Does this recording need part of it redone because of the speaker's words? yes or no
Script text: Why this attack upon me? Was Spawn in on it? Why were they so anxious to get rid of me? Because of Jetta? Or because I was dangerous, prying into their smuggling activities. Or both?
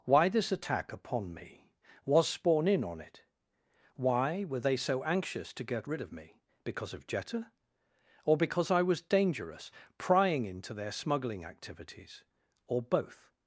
no